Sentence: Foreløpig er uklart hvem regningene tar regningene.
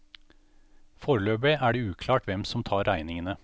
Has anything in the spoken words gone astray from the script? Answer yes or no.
yes